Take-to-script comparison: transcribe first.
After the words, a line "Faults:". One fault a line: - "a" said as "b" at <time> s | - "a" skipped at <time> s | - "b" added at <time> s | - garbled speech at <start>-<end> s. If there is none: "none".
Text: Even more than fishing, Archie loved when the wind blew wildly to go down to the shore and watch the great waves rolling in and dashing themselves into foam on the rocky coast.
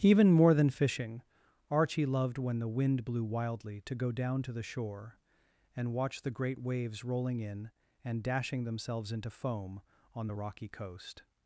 Even more than fishing, Archie loved when the wind blew wildly to go down to the shore and watch the great waves rolling in and dashing themselves into foam on the rocky coast.
Faults:
none